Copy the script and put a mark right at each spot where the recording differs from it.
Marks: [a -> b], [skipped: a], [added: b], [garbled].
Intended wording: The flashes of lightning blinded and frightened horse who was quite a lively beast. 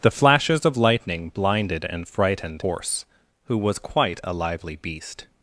The flashes of lightning blinded and frightened horse who was quite a lively beast.